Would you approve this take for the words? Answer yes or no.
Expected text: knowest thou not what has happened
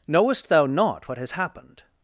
yes